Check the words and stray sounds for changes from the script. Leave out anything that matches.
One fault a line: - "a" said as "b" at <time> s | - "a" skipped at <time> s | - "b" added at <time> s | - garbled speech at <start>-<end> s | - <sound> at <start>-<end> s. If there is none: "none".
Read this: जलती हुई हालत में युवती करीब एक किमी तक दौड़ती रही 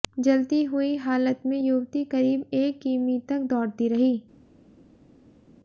none